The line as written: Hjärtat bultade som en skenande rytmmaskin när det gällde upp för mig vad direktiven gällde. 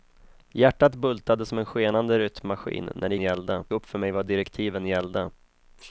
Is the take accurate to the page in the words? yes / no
yes